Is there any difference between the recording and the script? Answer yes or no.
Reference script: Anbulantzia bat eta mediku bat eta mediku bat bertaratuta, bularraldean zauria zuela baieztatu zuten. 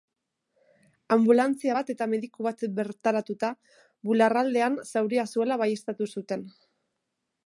yes